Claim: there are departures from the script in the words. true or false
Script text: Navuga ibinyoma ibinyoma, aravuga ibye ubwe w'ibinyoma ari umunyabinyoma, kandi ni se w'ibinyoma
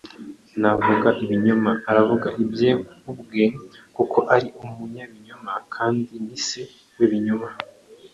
true